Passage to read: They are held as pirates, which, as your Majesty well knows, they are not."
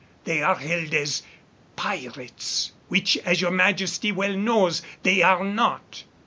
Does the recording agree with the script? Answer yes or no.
yes